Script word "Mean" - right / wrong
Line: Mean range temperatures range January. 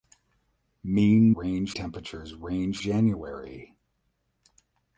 right